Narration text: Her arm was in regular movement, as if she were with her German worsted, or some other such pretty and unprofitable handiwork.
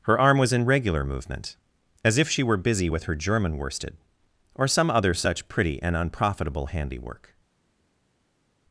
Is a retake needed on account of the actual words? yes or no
yes